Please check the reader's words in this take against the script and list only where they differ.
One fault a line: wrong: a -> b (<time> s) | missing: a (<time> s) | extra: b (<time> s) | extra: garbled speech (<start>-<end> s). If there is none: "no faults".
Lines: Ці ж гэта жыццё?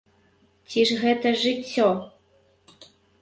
no faults